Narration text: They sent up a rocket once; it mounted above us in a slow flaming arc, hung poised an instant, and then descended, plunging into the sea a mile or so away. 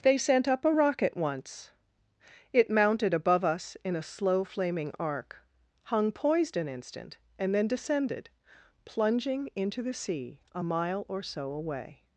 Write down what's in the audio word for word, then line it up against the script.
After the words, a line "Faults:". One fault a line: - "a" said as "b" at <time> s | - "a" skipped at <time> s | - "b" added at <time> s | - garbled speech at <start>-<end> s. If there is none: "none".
They sent up a rocket once; it mounted above us in a slow flaming arc, hung poised an instant, and then descended, plunging into the sea a mile or so away.
Faults:
none